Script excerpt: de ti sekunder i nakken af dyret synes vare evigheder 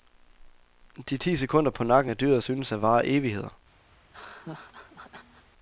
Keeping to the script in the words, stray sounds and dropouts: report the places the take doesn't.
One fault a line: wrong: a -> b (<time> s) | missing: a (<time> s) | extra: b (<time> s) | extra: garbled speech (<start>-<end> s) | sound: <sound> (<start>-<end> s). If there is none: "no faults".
wrong: i -> på (1.7 s)
extra: at (2.7 s)
sound: laugh (3.9-5.5 s)